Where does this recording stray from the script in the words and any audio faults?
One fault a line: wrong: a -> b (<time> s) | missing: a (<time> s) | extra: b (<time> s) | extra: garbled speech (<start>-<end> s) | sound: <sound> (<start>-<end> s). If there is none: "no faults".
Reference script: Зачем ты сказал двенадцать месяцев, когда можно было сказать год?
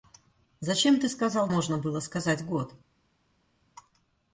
missing: двенадцать месяцев когда (1.5 s)